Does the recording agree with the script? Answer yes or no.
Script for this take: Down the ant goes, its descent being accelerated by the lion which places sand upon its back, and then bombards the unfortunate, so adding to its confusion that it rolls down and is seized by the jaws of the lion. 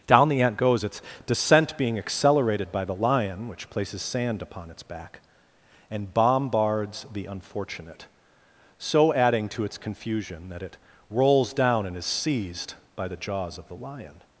no